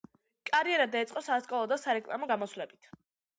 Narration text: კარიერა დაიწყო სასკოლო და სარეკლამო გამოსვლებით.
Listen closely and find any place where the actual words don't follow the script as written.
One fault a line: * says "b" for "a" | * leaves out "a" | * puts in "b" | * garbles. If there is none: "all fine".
all fine